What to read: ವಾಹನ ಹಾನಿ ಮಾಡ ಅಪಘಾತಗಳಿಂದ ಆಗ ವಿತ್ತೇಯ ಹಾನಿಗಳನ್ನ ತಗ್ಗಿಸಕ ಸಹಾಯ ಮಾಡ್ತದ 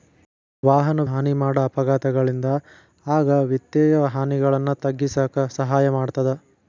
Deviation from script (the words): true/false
false